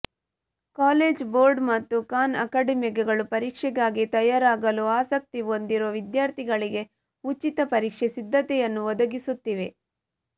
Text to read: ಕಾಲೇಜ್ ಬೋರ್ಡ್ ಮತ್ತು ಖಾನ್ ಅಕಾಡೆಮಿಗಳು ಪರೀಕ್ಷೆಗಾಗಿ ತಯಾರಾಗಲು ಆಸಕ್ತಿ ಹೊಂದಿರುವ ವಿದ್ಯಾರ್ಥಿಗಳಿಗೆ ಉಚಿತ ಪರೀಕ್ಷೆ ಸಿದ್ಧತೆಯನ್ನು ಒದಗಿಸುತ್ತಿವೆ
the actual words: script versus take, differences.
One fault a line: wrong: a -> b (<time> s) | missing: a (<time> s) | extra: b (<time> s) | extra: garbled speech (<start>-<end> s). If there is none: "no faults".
no faults